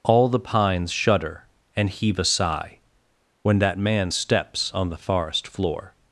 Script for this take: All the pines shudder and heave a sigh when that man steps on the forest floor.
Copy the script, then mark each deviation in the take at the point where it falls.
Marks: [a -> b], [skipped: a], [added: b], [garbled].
All the pines shudder and heave a sigh when that man steps on the forest floor.